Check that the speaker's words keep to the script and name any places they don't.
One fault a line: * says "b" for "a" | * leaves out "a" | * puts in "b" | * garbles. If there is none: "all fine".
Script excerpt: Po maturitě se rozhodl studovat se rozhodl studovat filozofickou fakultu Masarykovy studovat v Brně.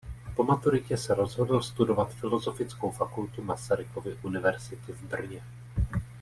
* leaves out "se rozhodl studovat"
* says "univerzity" for "studovat"